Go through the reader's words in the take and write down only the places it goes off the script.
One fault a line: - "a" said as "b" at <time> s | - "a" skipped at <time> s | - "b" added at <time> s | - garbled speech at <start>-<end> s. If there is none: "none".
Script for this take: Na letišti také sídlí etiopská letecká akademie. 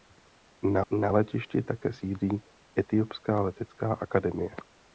- "na" added at 0.9 s